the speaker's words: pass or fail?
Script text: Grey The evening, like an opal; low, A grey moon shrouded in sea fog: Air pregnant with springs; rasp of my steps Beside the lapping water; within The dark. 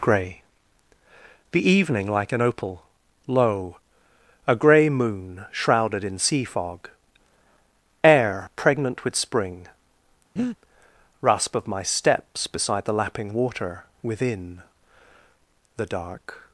fail